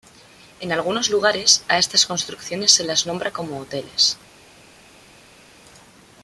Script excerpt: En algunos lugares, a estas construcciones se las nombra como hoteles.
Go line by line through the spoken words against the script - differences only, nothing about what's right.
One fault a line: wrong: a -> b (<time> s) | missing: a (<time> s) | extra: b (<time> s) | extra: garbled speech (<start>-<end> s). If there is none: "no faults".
no faults